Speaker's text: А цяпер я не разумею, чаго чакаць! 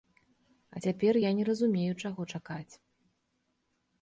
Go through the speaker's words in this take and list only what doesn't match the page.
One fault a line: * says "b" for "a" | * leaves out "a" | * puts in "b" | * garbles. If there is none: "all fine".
all fine